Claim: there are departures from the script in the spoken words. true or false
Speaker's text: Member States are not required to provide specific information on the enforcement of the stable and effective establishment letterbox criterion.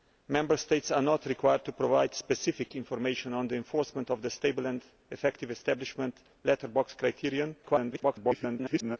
true